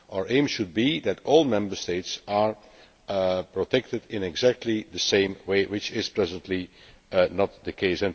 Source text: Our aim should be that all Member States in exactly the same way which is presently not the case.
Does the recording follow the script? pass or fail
fail